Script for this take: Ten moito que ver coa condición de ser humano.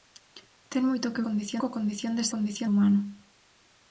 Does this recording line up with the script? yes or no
no